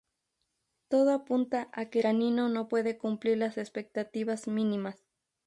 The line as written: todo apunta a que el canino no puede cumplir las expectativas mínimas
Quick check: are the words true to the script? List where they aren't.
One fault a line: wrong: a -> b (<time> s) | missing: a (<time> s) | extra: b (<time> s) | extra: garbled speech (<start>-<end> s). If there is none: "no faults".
missing: el (2.0 s)